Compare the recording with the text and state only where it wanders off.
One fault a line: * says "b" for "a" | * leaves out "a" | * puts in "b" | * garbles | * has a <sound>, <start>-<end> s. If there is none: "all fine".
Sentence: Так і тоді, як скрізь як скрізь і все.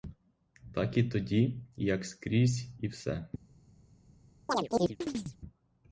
* leaves out "як скрізь"
* has a chirp, 4.5-5.4 s